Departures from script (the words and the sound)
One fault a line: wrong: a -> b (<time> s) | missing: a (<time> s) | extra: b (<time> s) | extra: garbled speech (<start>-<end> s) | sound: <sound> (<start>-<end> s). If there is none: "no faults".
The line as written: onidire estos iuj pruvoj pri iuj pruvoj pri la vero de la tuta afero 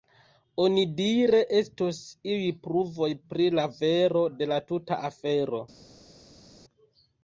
missing: iuj pruvoj pri (3.5 s)